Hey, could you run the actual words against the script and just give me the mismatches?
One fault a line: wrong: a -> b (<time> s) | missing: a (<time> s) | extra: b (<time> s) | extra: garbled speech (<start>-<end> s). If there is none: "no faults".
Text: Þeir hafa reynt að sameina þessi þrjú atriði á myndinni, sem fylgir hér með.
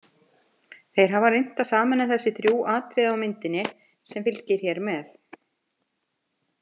no faults